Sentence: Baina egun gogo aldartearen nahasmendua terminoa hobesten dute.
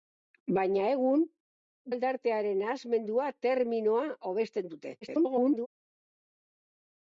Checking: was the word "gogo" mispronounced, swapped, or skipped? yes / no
yes